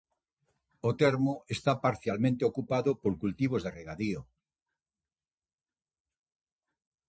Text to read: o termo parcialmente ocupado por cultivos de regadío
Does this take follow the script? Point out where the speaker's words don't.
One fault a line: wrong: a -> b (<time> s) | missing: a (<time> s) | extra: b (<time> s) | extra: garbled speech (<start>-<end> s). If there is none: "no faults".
extra: está (1.6 s)